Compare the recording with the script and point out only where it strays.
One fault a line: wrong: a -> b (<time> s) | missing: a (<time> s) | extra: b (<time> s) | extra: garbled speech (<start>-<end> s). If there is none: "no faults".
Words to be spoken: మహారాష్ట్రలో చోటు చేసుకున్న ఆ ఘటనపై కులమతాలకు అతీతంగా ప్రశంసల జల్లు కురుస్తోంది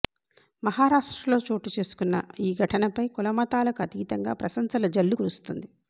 wrong: ఆ -> ఈ (2.4 s)